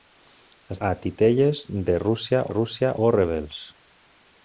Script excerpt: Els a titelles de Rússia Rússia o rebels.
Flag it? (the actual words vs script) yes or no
no